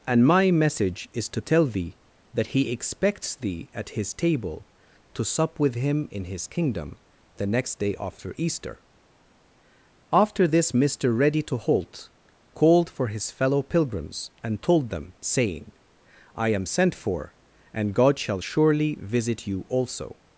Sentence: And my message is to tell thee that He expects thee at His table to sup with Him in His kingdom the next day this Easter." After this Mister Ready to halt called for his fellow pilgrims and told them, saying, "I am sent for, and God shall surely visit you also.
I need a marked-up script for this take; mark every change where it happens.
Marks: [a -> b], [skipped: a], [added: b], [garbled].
And my message is to tell thee that He expects thee at His table to sup with Him in His kingdom the next day [this -> after] Easter." After this Mister Ready to halt called for his fellow pilgrims and told them, saying, "I am sent for, and God shall surely visit you also.